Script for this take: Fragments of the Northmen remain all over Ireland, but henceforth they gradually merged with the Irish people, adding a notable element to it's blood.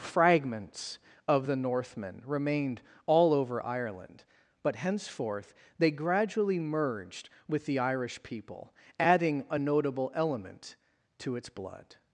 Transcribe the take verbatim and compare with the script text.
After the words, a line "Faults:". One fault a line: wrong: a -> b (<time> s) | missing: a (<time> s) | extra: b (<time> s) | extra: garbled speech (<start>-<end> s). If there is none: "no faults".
Fragments of the Northmen remained all over Ireland, but henceforth they gradually merged with the Irish people, adding a notable element to it's blood.
Faults:
wrong: remain -> remained (2.2 s)